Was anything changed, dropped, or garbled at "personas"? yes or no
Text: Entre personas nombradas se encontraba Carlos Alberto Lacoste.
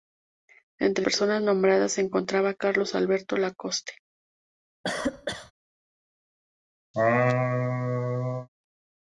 no